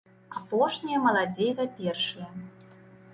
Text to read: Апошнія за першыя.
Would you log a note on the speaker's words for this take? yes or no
yes